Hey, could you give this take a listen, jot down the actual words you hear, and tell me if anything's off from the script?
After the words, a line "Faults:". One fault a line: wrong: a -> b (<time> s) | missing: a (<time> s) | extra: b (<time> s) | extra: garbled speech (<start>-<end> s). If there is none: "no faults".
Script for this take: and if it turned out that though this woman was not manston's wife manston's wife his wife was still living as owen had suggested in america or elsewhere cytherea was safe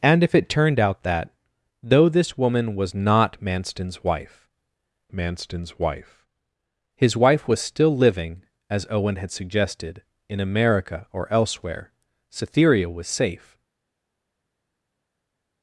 and if it turned out that though this woman was not manston's wife manston's wife his wife was still living as owen had suggested in america or elsewhere cytherea was safe
Faults:
no faults